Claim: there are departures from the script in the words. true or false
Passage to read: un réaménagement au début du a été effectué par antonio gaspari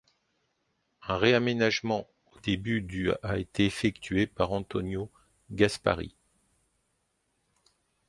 false